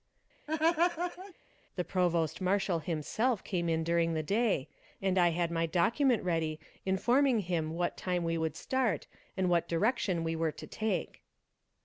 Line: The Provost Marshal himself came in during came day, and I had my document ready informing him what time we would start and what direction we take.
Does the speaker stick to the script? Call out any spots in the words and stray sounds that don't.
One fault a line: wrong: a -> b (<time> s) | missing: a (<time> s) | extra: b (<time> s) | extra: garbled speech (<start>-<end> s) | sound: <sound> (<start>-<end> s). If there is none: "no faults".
sound: laugh (0.5-1.3 s)
wrong: came -> the (4.1 s)
extra: were to (10.4 s)